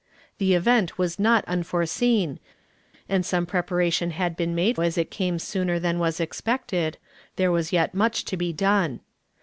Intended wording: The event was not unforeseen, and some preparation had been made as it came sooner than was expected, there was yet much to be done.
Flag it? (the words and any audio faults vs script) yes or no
no